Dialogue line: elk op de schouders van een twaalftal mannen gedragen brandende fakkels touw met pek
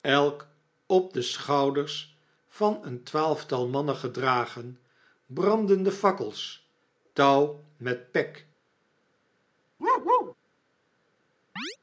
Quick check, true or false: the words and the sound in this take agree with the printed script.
false